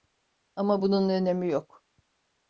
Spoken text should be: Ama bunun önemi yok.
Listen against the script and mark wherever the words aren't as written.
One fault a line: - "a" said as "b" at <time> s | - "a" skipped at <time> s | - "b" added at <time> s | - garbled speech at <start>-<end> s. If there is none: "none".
none